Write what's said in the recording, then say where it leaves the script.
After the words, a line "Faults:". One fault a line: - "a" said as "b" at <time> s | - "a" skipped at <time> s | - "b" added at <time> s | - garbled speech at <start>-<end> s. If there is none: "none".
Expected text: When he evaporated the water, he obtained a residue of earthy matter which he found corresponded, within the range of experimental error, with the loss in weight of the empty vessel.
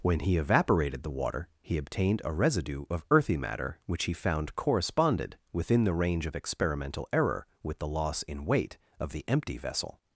When he evaporated the water, he obtained a residue of earthy matter which he found corresponded, within the range of experimental error, with the loss in weight of the empty vessel.
Faults:
none